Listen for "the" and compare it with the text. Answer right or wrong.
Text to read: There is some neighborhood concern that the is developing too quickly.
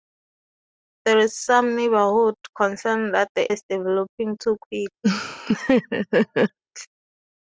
right